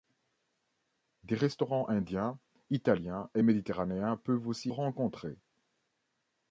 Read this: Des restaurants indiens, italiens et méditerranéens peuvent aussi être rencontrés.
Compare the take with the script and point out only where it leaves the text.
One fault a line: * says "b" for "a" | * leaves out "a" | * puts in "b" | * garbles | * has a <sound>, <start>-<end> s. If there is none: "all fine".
* leaves out "être"